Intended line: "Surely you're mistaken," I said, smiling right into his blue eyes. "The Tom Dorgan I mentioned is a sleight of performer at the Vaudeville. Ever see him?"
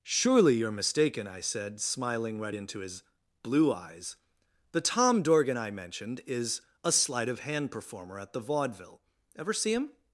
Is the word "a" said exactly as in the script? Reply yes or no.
yes